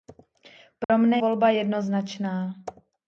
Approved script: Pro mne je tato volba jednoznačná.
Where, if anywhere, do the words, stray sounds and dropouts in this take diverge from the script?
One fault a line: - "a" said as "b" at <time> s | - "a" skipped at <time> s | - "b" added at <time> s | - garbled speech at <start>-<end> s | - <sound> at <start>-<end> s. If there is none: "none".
- dropout at 0.8-0.9 s
- "je tato" skipped at 1.2 s